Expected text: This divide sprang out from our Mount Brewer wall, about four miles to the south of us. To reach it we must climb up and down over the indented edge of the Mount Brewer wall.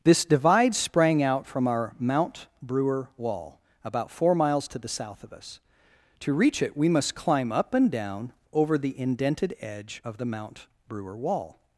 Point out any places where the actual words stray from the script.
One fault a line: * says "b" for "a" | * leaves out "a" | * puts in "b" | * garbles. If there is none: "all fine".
all fine